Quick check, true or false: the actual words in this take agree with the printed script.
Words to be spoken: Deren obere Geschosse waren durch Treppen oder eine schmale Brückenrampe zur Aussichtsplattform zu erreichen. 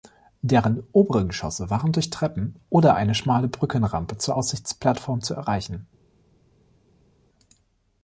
true